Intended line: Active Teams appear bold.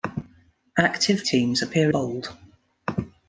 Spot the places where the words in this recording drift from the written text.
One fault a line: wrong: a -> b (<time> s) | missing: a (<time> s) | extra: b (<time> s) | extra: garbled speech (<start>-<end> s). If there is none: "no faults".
no faults